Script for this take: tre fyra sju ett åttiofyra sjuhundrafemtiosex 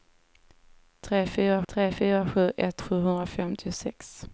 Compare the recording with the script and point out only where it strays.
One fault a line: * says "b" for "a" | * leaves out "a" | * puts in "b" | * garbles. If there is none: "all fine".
* puts in "tre fyra"
* leaves out "åttiofyra"